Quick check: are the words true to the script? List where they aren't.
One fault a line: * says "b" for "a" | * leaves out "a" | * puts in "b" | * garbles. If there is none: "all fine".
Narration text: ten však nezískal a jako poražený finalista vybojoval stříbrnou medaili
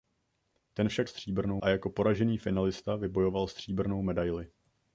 * says "stříbrnou" for "nezískal"